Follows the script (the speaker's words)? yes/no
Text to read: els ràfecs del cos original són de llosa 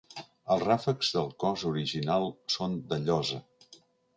yes